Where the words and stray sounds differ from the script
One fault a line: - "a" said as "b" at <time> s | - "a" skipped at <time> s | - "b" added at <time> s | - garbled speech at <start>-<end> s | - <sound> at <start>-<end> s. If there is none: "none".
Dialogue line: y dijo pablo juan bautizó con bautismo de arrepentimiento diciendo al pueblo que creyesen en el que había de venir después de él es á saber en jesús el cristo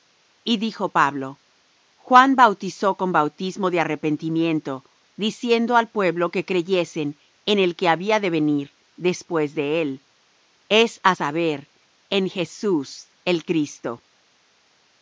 none